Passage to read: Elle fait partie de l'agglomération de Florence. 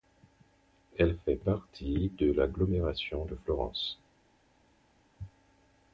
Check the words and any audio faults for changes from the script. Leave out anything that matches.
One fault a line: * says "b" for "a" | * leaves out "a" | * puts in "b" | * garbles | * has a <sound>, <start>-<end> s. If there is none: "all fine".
all fine